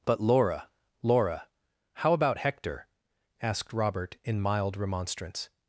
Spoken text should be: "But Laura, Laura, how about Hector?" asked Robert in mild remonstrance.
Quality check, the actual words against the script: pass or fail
pass